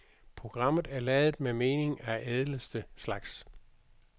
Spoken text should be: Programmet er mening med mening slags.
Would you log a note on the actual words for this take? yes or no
yes